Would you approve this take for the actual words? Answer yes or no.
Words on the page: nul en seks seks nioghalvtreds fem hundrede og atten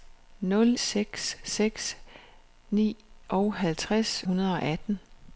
no